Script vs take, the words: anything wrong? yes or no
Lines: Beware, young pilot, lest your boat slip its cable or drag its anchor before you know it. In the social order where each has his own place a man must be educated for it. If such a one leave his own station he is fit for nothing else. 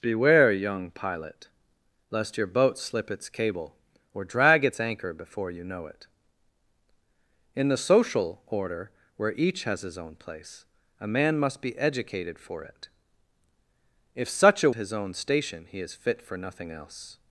yes